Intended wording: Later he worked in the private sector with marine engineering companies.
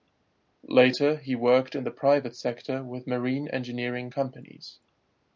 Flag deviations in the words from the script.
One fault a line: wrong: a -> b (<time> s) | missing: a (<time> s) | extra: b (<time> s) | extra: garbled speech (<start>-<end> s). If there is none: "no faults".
no faults